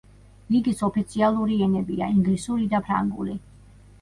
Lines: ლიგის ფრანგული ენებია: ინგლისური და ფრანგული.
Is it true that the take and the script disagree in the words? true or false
true